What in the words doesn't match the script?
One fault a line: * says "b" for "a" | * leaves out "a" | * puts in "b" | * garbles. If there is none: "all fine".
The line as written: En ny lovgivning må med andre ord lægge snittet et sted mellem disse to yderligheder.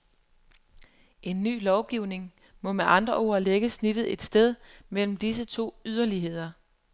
all fine